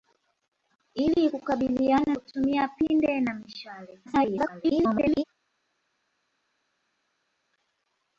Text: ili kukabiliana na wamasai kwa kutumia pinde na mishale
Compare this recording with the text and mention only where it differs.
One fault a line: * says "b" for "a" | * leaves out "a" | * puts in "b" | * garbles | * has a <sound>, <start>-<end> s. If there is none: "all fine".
* leaves out "na wamasai kwa"
* garbles